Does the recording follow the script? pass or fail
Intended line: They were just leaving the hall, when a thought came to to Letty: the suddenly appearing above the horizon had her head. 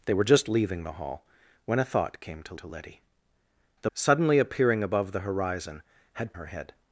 pass